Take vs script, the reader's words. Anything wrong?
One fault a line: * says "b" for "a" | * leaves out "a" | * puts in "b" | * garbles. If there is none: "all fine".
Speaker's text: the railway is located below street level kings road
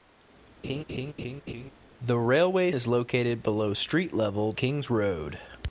all fine